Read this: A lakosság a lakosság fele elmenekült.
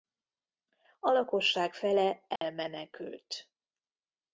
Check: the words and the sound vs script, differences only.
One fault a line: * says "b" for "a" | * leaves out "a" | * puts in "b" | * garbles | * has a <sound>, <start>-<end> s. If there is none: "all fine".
* leaves out "a lakosság"
* has a dropout, 2.4-2.4 s